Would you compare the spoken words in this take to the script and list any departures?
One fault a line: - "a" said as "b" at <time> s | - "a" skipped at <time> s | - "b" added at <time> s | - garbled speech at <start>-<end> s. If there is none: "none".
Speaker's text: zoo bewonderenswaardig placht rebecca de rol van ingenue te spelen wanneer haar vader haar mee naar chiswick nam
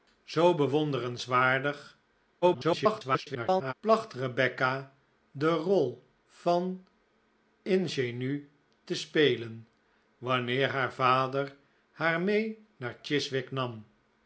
- garbled speech at 2.4-3.7 s